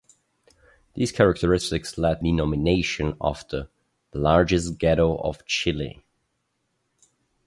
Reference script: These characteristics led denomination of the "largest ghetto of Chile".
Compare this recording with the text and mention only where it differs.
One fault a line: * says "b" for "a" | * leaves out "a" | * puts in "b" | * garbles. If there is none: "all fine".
all fine